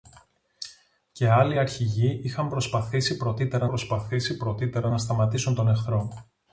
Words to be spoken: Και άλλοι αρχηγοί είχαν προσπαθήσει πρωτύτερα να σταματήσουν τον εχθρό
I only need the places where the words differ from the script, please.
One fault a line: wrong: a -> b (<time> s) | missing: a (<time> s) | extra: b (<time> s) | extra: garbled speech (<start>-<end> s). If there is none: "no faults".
extra: προσπαθήσει πρωτύτερα (3.6 s)